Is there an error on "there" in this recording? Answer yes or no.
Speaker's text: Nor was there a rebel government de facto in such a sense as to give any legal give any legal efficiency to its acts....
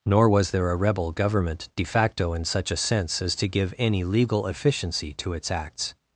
no